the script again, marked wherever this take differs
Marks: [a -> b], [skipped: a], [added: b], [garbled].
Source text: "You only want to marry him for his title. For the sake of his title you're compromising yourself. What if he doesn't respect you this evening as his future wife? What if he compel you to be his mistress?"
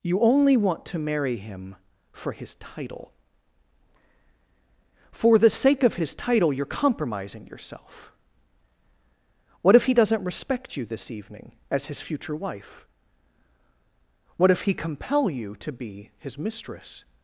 "You only want to marry him for his title. For the sake of his title you're compromising yourself. What if he doesn't respect you this evening as his future wife? What if he compel you to be his mistress?"